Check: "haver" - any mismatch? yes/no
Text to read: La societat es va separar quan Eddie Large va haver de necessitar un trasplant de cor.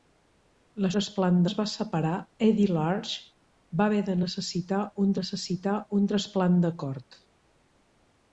no